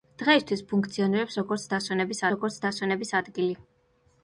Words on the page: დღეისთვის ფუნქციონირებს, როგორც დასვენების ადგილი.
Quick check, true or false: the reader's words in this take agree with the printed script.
false